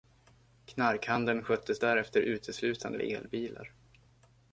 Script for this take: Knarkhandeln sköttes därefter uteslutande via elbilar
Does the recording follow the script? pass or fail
fail